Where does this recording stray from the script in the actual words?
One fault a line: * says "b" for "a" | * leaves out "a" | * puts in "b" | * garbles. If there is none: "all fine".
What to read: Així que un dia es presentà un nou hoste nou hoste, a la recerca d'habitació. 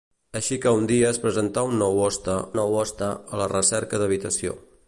all fine